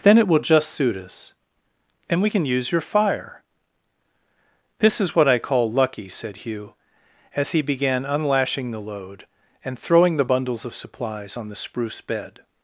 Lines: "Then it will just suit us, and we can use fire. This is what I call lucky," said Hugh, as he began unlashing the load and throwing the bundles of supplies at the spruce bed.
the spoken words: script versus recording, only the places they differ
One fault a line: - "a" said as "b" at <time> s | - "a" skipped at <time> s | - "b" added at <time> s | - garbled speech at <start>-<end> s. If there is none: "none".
- "your" added at 2.7 s
- "at" said as "on" at 11.3 s